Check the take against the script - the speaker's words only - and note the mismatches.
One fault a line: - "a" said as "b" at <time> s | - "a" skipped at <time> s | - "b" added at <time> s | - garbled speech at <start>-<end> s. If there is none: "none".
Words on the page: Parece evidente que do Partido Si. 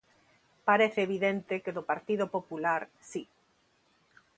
- "Popular" added at 2.4 s